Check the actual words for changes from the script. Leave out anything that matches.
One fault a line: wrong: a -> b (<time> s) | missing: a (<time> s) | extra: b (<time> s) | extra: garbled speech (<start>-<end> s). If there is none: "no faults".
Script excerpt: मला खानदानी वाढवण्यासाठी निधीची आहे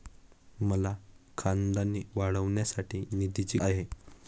no faults